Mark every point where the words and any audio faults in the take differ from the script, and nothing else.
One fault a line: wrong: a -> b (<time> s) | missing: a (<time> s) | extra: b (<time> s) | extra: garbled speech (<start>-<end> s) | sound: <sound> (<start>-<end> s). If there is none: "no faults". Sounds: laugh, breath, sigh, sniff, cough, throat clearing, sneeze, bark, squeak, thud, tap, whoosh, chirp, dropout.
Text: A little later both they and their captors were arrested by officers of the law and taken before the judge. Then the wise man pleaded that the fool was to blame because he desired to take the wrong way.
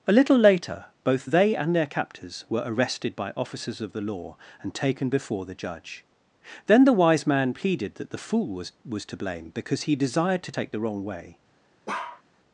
extra: was (8.8 s)
sound: bark (11.9-12.2 s)